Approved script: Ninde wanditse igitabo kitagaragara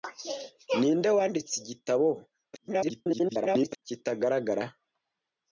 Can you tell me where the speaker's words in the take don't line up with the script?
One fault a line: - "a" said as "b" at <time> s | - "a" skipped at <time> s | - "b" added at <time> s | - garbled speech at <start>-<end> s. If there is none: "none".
- garbled speech at 2.5-3.8 s